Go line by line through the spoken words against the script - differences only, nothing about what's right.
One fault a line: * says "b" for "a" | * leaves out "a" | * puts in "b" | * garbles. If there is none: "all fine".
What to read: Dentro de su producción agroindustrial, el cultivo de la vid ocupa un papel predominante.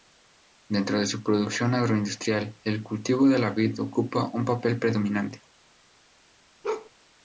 all fine